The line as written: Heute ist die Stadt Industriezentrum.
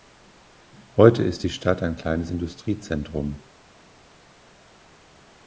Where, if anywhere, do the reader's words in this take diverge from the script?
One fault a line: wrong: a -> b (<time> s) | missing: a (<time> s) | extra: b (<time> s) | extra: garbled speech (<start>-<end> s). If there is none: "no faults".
extra: ein kleines (1.8 s)